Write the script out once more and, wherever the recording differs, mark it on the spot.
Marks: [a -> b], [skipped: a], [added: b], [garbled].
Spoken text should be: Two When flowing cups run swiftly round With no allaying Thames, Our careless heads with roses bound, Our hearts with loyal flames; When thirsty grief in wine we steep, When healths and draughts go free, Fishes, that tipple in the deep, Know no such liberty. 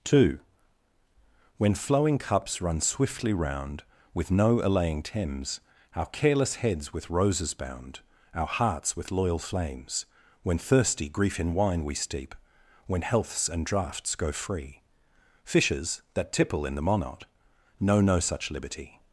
Two When flowing cups run swiftly round With no allaying Thames, Our careless heads with roses bound, Our hearts with loyal flames; When thirsty grief in wine we steep, When healths and draughts go free, Fishes, that tipple in the [deep, -> monot] Know no such liberty.